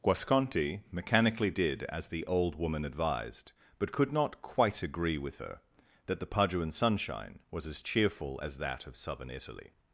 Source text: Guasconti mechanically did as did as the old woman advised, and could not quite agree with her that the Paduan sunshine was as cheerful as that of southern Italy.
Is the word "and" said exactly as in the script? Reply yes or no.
no